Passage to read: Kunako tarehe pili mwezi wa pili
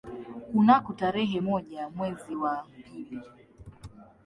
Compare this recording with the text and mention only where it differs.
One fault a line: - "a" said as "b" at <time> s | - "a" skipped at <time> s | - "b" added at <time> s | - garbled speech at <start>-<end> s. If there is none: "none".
- "pili" said as "moja" at 1.4 s